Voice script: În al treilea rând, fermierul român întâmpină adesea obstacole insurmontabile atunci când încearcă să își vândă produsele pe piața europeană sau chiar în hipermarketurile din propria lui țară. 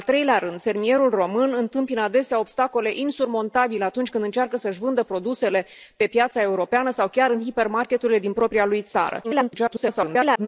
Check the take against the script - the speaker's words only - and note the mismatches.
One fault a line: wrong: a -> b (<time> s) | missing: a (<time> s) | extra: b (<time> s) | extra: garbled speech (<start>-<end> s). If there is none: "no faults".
extra: garbled speech (9.2-10.5 s)